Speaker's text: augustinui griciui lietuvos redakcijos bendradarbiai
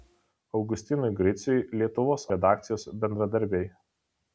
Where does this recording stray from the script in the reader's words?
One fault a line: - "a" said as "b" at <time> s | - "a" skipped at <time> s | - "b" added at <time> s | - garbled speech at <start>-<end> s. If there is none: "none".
none